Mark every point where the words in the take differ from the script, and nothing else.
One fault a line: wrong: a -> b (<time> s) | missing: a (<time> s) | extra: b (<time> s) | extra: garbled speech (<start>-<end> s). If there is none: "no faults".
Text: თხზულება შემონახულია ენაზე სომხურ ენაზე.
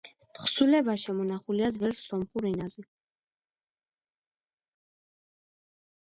wrong: ენაზე -> ძველ (1.8 s)